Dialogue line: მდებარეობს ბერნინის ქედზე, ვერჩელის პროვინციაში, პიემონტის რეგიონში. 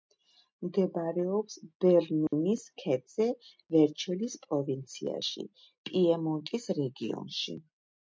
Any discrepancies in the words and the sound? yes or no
yes